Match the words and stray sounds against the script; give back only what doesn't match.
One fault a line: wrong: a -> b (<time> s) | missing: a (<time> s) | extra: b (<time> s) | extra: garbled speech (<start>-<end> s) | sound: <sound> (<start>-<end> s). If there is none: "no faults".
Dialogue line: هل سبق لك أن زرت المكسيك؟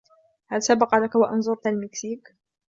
extra: و (1.1 s)